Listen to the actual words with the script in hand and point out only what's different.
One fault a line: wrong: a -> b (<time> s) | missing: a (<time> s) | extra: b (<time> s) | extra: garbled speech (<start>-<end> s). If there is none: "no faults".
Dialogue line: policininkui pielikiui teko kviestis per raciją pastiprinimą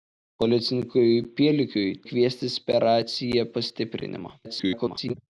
missing: teko (1.9 s)
extra: garbled speech (4.4-5.1 s)